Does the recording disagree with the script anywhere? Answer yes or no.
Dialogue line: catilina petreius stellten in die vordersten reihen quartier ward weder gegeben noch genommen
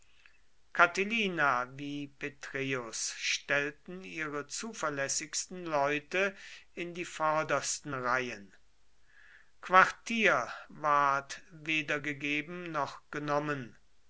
yes